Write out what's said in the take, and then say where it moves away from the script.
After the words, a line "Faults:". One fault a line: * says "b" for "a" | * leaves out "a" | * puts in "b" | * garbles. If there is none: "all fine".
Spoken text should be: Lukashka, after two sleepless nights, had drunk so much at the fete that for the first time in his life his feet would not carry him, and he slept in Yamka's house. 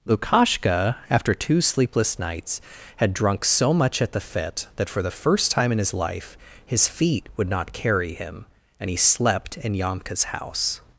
Lukashka, after two sleepless nights, had drunk so much at the fete that for the first time in his life his feet would not carry him, and he slept in Yamka's house.
Faults:
all fine